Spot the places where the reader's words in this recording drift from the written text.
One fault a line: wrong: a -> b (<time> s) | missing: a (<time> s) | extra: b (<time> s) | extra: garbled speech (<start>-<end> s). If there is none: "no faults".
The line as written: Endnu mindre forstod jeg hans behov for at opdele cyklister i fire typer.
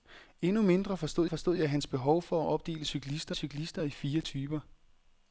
extra: forstod (1.3 s)
extra: cyklister (3.3 s)